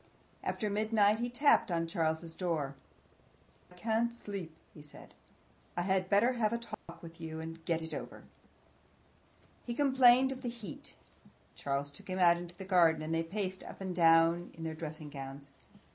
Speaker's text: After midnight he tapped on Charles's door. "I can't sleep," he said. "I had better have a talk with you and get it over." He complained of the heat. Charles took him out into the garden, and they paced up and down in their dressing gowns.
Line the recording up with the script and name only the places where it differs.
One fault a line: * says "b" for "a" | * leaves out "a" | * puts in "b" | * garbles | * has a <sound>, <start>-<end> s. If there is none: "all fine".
* leaves out "I"
* has a dropout, 6.7-6.9 s